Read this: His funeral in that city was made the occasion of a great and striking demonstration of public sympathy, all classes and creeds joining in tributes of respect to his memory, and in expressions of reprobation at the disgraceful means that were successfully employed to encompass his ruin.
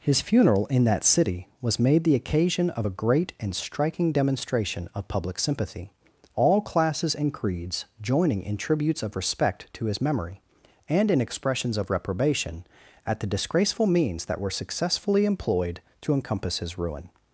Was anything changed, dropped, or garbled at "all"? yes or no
no